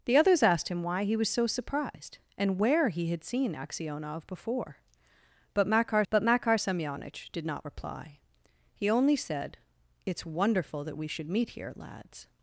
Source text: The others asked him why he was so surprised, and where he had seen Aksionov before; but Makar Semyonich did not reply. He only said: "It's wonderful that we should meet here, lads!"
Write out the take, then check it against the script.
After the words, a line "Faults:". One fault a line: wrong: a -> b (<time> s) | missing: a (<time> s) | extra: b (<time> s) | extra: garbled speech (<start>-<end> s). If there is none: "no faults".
The others asked him why he was so surprised, and where he had seen Aksionov before; but Makar but Makar Semyonich did not reply. He only said: "It's wonderful that we should meet here, lads!"
Faults:
extra: but Makar (6.1 s)